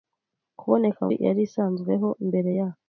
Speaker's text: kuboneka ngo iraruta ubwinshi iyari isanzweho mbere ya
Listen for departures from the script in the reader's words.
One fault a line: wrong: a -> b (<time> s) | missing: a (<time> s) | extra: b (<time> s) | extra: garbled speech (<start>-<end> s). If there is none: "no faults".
missing: ngo iraruta ubwinshi (1.0 s)